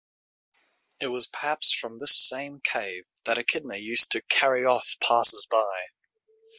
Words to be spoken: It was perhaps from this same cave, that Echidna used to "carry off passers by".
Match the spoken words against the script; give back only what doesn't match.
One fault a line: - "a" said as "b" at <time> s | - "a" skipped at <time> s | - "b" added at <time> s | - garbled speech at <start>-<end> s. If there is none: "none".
none